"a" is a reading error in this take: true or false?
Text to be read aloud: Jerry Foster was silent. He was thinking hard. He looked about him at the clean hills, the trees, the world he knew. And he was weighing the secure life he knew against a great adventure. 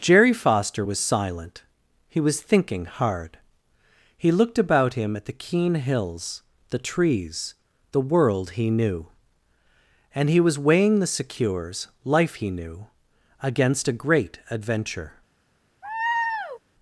false